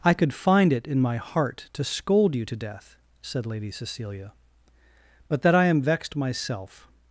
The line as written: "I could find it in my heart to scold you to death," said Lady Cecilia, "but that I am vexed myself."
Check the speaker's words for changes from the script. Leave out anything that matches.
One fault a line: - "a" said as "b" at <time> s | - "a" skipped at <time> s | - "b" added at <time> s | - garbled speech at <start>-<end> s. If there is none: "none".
none